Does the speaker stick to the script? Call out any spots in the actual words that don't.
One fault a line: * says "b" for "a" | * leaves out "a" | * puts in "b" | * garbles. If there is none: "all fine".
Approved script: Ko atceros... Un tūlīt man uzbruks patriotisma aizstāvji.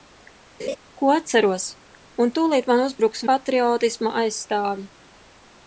all fine